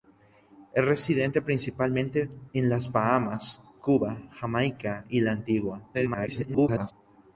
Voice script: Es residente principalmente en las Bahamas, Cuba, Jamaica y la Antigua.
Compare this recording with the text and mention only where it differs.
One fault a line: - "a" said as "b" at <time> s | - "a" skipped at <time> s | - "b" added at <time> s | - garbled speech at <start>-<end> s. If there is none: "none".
- garbled speech at 5.9-6.9 s